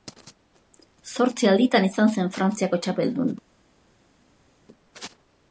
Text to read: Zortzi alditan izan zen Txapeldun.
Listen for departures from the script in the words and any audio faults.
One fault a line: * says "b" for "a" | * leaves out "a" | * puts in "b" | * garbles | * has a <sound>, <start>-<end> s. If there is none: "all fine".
* puts in "Frantziako"